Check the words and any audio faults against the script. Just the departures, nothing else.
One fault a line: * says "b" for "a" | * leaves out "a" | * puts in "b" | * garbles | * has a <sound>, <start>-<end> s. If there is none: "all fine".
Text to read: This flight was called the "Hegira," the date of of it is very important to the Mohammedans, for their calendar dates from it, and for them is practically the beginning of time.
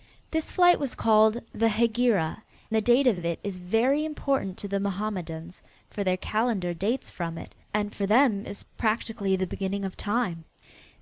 all fine